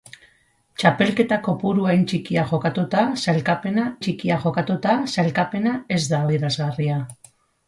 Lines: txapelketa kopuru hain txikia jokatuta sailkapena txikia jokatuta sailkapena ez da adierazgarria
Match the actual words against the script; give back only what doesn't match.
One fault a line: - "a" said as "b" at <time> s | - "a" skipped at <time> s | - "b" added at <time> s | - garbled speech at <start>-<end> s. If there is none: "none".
none